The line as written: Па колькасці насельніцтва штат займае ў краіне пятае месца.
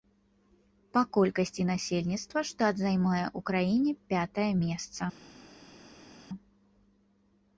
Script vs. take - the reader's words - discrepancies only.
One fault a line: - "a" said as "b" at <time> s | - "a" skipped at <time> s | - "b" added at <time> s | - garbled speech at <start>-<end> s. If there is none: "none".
none